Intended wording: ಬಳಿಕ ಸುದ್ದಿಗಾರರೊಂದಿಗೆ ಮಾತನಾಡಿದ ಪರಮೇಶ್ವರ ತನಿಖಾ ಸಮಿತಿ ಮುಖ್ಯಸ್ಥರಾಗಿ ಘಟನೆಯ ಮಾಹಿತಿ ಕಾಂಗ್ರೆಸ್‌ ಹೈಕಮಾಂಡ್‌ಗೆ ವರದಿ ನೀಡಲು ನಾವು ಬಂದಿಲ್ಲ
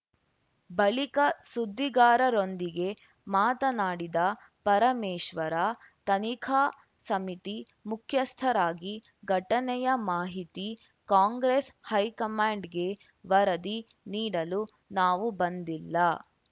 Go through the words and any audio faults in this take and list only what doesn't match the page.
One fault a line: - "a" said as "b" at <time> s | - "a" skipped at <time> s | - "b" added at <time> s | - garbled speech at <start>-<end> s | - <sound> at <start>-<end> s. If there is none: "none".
none